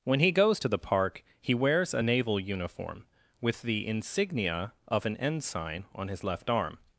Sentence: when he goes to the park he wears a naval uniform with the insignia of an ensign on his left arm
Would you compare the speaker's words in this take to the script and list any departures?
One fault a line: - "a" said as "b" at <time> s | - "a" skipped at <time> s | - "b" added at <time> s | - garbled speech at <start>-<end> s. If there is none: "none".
none